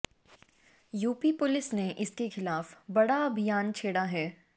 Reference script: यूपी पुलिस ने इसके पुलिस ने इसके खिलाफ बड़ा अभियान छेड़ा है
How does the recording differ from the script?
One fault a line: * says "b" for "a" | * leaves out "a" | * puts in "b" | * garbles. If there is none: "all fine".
* leaves out "पुलिस ने इसके"